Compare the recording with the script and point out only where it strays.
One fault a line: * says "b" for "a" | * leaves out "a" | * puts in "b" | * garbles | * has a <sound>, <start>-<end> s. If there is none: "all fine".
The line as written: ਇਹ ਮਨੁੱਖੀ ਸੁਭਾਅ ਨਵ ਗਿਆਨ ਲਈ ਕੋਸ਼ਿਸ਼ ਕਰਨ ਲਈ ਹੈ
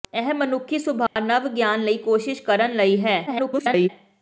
* has a dropout, 1.1-1.2 s
* garbles